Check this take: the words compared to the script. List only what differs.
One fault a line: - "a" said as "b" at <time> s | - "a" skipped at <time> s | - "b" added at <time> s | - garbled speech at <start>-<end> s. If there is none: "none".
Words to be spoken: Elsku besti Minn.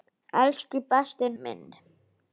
none